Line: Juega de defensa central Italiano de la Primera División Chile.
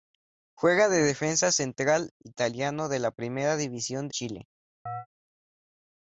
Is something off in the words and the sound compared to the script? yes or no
yes